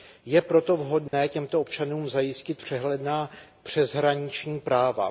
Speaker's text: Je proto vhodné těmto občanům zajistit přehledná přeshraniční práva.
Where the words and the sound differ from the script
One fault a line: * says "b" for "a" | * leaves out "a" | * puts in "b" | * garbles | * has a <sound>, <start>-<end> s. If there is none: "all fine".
* has a dropout, 1.1-1.1 s